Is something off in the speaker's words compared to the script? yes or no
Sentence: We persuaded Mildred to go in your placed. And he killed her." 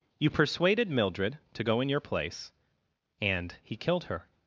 yes